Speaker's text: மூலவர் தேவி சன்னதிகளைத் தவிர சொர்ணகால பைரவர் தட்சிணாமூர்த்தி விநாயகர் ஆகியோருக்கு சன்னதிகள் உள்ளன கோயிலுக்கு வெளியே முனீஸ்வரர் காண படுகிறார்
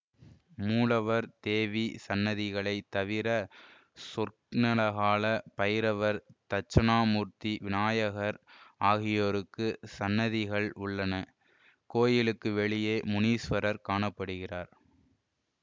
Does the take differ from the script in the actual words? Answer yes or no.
no